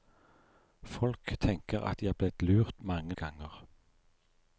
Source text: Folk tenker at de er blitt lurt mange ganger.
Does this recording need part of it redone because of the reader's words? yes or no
no